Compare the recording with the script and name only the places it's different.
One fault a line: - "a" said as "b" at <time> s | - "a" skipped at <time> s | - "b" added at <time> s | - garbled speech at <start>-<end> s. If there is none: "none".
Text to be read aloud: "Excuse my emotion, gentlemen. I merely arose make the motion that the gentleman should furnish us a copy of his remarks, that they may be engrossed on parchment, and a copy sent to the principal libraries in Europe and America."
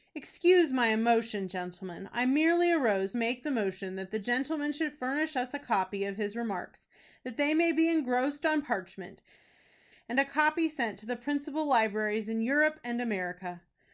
none